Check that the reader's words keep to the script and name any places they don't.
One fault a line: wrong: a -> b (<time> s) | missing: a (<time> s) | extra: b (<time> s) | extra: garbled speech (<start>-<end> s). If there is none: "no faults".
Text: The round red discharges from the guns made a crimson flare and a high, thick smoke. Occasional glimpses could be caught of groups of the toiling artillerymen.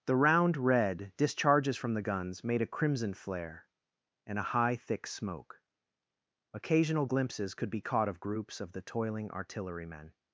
no faults